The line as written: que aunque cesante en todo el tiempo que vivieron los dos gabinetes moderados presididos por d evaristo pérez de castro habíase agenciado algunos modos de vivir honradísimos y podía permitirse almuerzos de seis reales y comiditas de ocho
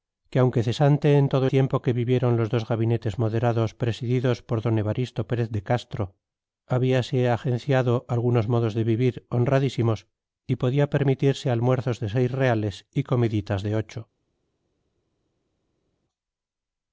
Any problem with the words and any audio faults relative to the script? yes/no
yes